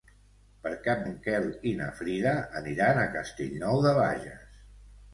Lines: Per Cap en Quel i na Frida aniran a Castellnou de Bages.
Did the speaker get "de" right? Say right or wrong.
right